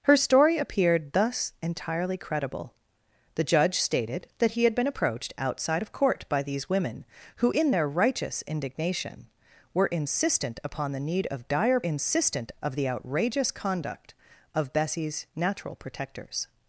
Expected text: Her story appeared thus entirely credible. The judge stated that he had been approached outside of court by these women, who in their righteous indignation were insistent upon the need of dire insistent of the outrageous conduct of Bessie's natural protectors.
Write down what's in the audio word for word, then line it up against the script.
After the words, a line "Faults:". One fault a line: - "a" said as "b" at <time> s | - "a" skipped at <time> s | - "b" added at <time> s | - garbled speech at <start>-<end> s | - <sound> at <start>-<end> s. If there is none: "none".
Her story appeared thus entirely credible. The judge stated that he had been approached outside of court by these women, who in their righteous indignation were insistent upon the need of dire insistent of the outrageous conduct of Bessie's natural protectors.
Faults:
none